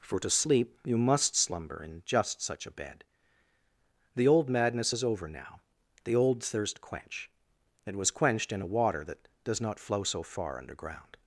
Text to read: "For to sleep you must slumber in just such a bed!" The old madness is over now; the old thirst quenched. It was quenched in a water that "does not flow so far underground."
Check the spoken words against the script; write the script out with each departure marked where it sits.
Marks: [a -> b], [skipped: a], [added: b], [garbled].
"For to sleep you must slumber in just such a bed!" The old madness is over now; the old thirst [quenched. -> quench] It was quenched in a water that "does not flow so far underground."